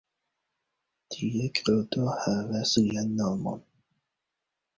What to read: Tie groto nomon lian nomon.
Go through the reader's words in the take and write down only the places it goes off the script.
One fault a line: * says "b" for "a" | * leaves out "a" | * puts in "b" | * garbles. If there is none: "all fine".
* says "havas" for "nomon"